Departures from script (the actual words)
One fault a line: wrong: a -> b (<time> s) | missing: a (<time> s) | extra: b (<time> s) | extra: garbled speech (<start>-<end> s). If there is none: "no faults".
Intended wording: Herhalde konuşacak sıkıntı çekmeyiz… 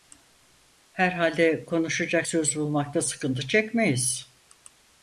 extra: söz bulmakta (2.2 s)